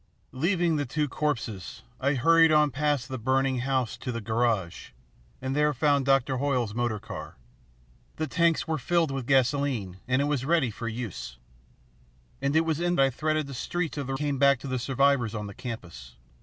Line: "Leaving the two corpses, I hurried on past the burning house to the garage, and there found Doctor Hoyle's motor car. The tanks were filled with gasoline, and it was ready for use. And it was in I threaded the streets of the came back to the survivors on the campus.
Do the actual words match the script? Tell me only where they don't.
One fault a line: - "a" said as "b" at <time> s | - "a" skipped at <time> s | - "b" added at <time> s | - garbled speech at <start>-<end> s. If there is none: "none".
none